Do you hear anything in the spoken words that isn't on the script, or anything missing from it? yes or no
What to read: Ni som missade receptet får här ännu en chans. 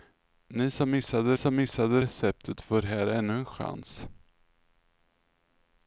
yes